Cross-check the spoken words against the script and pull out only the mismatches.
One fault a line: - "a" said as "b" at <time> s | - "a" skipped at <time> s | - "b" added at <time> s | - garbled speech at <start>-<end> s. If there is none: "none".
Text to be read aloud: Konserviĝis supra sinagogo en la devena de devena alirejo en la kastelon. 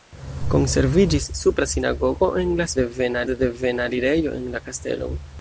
none